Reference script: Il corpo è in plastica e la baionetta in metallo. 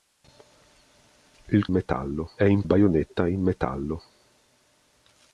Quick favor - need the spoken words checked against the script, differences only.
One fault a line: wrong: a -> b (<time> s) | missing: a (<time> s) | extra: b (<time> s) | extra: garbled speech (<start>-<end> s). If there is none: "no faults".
wrong: corpo -> metallo (1.7 s)
missing: plastica e la (2.6 s)